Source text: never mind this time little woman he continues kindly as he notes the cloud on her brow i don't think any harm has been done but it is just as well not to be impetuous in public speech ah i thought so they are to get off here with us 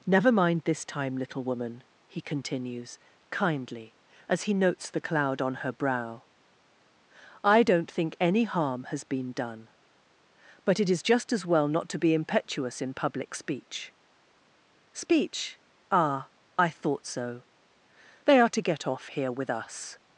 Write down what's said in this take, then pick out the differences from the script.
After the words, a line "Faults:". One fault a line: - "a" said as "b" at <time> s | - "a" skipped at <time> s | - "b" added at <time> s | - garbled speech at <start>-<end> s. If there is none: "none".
never mind this time little woman he continues kindly as he notes the cloud on her brow i don't think any harm has been done but it is just as well not to be impetuous in public speech speech ah i thought so they are to get off here with us
Faults:
- "speech" added at 14.9 s